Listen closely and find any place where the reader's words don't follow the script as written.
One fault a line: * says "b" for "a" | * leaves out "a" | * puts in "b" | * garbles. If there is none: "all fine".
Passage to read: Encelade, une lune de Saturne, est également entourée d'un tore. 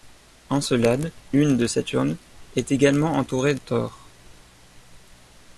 * leaves out "une"
* leaves out "d'un"